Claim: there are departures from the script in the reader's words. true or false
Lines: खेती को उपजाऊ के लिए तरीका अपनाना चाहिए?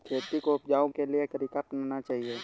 false